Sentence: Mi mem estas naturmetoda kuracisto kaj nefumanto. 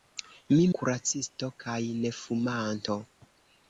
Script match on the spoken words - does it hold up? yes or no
no